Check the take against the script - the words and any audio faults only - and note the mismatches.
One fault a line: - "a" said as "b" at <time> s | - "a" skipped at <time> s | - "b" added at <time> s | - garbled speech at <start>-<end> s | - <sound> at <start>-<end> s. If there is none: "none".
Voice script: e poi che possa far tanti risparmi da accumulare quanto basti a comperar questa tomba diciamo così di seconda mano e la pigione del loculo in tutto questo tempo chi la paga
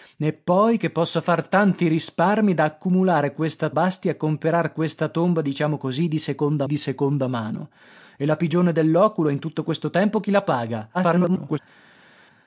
- "quanto" said as "questa" at 3.3 s
- "di seconda" added at 6.6 s
- garbled speech at 10.9-11.6 s